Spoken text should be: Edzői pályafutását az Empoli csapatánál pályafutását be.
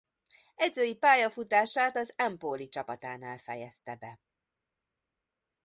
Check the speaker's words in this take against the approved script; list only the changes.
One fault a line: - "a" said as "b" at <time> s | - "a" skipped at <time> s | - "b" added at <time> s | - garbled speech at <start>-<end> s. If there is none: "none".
- "pályafutását" said as "fejezte" at 3.4 s